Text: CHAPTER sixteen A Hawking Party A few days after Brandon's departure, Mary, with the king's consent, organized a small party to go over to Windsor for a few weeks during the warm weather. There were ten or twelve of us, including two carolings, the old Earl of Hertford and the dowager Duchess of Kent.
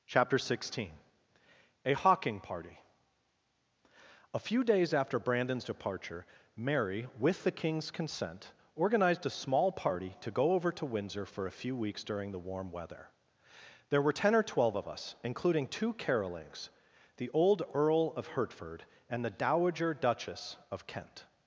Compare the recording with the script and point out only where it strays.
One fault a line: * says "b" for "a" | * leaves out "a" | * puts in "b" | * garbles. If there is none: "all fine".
all fine